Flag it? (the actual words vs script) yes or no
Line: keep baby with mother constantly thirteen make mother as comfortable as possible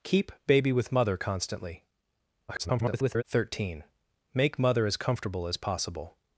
yes